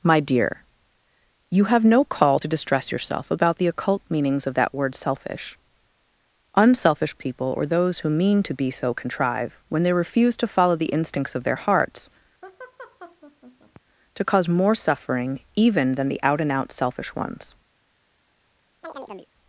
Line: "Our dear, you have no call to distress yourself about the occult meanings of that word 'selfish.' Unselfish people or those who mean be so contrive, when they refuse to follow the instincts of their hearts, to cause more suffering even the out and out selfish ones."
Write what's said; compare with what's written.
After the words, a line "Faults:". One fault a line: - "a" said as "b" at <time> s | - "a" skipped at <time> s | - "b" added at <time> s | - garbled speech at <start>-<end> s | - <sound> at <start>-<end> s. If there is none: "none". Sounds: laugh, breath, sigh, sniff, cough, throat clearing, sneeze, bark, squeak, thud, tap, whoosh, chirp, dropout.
"My dear, you have no call to distress yourself about the occult meanings of that word 'selfish.' Unselfish people or those who mean to be so contrive, when they refuse to follow the instincts of their hearts, to cause more suffering even than the out and out selfish ones."
Faults:
- "Our" said as "My" at 0.0 s
- "to" added at 8.4 s
- laugh at 12.4-13.8 s
- "than" added at 15.9 s
- chirp at 18.8-19.3 s